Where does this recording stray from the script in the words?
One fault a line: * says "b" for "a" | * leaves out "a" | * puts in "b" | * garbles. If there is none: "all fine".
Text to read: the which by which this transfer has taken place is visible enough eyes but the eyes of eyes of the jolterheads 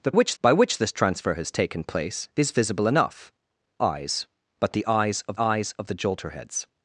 all fine